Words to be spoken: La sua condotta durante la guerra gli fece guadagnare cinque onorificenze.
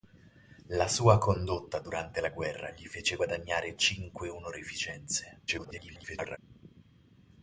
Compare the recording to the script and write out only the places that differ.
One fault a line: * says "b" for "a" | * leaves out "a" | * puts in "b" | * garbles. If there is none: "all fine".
* garbles